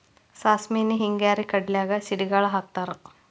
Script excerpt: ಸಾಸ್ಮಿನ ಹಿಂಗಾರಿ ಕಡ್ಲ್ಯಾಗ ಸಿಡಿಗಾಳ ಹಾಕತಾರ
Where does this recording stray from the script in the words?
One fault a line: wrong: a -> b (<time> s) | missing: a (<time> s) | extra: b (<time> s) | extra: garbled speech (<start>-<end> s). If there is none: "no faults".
no faults